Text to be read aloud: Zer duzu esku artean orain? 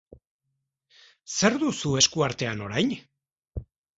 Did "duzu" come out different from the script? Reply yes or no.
no